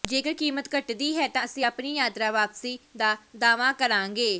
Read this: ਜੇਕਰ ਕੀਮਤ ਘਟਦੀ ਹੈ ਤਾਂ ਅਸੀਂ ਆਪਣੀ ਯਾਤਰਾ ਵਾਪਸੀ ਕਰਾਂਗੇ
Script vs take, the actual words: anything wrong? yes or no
yes